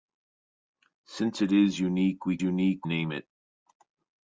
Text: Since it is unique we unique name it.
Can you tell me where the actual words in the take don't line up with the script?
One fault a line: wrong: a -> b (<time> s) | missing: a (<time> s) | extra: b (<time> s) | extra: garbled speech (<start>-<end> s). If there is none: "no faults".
no faults